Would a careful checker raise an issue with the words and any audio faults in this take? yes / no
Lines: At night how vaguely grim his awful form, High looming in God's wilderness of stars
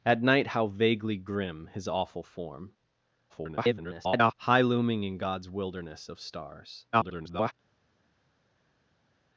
yes